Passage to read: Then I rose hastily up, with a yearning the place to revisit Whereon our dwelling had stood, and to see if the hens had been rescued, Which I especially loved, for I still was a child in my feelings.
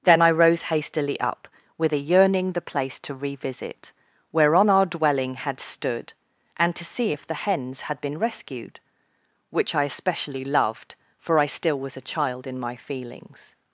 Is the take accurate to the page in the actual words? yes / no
yes